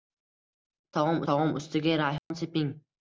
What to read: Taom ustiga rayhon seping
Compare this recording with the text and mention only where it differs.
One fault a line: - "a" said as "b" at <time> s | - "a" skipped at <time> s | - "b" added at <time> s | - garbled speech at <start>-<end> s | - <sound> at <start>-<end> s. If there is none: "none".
- "taom" added at 1.3 s
- dropout at 2.2-2.3 s